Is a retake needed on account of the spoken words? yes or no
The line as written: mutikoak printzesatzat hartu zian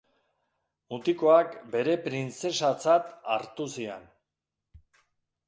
yes